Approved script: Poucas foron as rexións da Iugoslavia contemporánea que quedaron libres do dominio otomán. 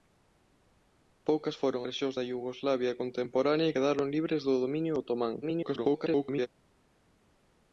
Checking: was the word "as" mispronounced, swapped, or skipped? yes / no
yes